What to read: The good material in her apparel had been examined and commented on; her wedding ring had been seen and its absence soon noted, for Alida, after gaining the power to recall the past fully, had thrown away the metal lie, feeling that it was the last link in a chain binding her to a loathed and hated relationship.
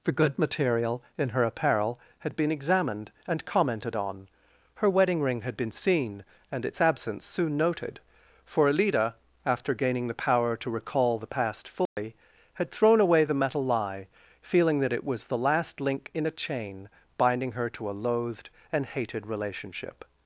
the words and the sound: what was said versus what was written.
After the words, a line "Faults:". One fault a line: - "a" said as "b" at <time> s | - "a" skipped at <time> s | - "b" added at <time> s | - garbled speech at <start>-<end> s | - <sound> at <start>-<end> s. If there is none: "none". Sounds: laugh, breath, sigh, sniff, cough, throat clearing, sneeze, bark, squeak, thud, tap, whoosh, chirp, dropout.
The good material in her apparel had been examined and commented on; her wedding ring had been seen and its absence soon noted, for Alida, after gaining the power to recall the past fully, had thrown away the metal lie, feeling that it was the last link in a chain binding her to a loathed and hated relationship.
Faults:
- dropout at 11.9-12.0 s